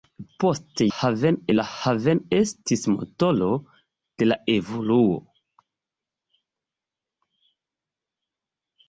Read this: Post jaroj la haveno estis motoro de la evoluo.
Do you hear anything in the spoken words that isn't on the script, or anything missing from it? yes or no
yes